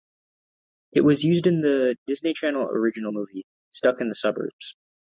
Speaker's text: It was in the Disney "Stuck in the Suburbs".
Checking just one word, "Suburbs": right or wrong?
right